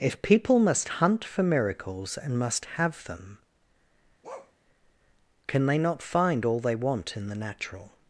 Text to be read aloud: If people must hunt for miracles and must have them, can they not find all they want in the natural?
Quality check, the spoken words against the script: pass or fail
pass